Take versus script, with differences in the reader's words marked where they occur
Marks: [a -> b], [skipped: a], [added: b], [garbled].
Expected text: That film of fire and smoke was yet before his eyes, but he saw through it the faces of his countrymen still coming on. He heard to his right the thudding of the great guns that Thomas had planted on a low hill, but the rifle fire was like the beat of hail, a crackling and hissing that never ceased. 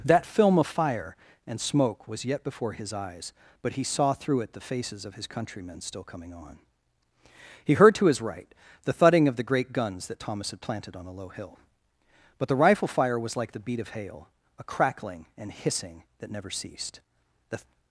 That film of fire and smoke was yet before his eyes, but he saw through it the faces of his countrymen still coming on. He heard to his right the thudding of the great guns that Thomas had planted on a low hill, but the rifle fire was like the beat of hail, a crackling and hissing that never ceased. [added: The]